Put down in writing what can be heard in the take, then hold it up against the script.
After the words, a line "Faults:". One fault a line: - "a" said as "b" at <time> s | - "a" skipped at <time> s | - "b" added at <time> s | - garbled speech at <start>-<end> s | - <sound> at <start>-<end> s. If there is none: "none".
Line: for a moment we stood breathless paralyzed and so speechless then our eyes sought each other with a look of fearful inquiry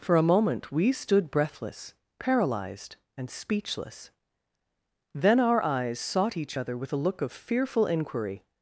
for a moment we stood breathless paralyzed and speechless then our eyes sought each other with a look of fearful inquiry
Faults:
- "so" skipped at 3.3 s